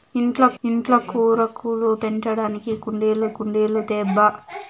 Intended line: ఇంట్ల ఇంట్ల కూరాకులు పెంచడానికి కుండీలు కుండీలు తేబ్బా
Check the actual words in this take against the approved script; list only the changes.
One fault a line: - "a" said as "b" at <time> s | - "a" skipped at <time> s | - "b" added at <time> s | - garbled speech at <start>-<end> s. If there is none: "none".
none